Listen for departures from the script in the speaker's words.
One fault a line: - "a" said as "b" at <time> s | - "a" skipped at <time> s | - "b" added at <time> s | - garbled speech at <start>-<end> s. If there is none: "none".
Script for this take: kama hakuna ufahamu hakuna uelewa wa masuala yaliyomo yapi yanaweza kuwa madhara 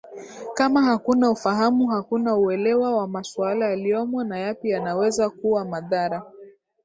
- "na" added at 4.2 s